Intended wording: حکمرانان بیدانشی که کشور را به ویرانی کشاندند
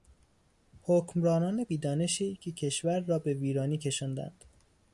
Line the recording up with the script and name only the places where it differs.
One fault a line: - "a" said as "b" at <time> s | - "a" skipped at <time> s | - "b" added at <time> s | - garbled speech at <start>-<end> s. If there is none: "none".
none